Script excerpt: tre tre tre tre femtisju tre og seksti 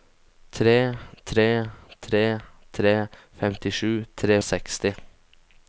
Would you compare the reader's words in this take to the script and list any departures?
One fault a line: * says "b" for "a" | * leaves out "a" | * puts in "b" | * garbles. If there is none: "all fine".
all fine